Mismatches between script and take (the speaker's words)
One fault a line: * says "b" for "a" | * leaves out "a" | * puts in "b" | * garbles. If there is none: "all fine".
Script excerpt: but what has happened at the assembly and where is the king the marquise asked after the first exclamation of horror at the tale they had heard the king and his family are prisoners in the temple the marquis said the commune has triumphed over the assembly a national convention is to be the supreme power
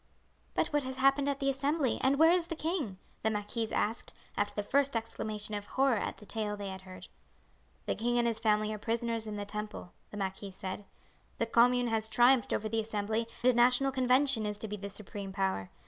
all fine